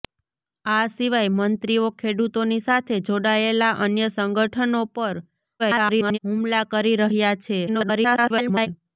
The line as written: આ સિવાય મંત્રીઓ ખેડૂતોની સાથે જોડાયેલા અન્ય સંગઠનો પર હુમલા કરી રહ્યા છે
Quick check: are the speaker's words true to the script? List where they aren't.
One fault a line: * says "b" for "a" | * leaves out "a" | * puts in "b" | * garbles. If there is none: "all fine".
* garbles
* garbles